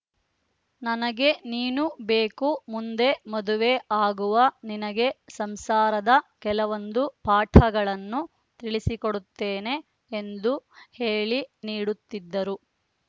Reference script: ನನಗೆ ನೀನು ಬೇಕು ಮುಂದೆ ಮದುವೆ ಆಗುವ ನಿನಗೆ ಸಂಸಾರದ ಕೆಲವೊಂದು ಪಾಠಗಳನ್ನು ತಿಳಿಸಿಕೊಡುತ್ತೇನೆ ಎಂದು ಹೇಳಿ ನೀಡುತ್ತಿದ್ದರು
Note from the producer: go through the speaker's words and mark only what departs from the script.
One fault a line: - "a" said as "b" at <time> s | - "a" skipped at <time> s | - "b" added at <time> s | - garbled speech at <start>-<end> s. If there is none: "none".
none